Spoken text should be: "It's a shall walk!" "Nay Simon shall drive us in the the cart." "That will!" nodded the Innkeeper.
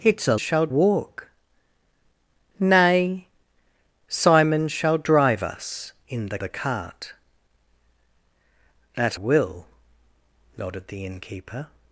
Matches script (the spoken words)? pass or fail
pass